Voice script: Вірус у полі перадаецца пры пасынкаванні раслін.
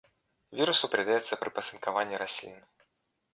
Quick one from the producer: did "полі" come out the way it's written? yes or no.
no